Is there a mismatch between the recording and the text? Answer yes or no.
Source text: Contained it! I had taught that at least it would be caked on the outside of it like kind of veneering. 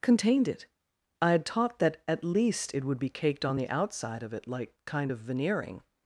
no